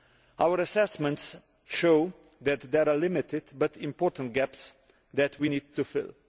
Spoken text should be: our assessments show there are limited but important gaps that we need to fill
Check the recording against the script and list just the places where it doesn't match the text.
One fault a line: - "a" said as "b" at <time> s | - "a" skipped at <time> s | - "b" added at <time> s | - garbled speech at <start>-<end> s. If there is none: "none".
- "that" added at 2.4 s